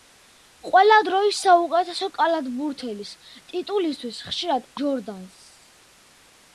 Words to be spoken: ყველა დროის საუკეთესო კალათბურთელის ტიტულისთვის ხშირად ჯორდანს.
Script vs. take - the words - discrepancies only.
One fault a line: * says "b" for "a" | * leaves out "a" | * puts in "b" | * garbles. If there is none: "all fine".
all fine